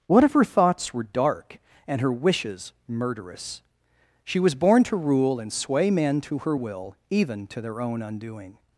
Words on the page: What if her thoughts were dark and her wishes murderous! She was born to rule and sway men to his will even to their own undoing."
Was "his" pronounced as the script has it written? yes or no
no